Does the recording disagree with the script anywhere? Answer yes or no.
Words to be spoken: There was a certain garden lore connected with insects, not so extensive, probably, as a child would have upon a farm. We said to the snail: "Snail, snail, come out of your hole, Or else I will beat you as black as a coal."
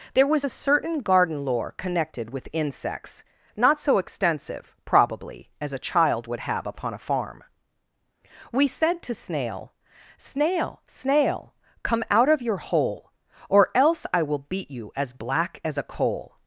yes